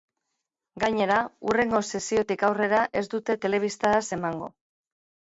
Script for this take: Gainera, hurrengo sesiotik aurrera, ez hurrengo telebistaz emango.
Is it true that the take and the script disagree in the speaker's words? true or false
true